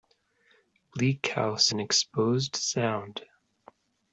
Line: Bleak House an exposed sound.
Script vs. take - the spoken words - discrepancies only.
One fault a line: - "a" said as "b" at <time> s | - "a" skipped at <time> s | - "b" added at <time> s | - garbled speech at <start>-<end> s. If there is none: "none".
none